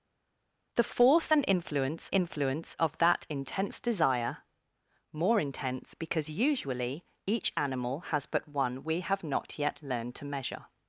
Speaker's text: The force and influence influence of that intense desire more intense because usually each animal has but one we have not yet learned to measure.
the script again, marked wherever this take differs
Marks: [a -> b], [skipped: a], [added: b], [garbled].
The force and influence influence of that intense desire more intense because usually each animal has but one we have not yet learned to measure.